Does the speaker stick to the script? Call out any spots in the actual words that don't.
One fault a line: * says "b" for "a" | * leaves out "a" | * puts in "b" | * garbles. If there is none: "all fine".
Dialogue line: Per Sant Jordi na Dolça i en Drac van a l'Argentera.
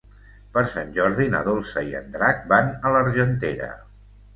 all fine